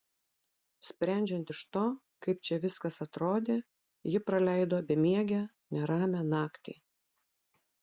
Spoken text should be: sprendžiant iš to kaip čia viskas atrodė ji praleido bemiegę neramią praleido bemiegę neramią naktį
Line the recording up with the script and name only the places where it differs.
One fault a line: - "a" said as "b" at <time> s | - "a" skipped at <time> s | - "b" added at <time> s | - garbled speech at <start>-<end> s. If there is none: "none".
- "praleido bemiegę neramią" skipped at 6.2 s